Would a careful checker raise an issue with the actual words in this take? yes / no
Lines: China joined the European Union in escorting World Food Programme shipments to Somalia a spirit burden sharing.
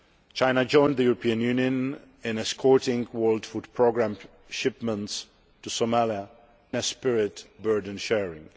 no